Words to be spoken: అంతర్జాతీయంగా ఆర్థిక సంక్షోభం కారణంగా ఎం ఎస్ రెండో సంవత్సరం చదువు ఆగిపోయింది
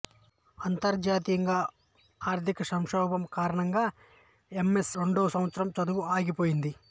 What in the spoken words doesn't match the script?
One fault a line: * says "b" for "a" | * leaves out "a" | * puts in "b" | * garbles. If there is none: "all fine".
all fine